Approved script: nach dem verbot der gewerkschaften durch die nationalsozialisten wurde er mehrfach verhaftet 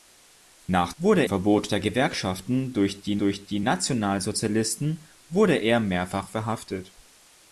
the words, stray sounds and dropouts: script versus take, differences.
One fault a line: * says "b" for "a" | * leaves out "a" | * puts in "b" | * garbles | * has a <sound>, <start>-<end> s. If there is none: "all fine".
* says "wurde" for "dem"
* puts in "durch die"